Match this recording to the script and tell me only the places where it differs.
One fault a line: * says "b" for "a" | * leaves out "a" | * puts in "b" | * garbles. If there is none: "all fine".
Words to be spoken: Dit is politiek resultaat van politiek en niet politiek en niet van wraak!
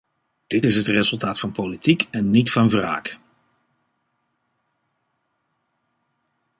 * says "het" for "politiek"
* leaves out "politiek en niet"